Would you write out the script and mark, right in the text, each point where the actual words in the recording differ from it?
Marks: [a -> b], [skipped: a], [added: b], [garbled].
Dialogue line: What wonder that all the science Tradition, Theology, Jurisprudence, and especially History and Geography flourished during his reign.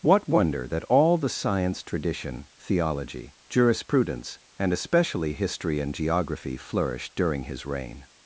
What wonder that all the science Tradition, Theology, Jurisprudence, and especially History and Geography flourished during his reign.